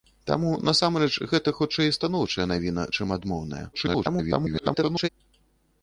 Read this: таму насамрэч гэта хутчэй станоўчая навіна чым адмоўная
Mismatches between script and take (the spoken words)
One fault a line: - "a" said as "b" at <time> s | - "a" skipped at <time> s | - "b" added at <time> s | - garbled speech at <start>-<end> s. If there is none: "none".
- garbled speech at 3.7-5.1 s